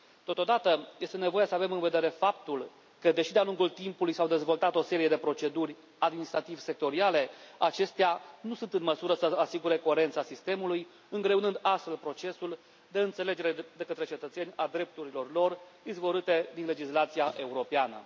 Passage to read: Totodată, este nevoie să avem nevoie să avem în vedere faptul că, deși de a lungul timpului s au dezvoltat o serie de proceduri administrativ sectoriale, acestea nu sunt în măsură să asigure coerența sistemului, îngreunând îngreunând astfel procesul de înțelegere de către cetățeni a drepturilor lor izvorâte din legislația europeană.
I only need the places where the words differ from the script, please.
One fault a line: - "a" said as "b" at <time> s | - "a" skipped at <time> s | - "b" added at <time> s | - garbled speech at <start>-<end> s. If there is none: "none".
- "nevoie să avem" skipped at 1.7 s
- "îngreunând" skipped at 11.6 s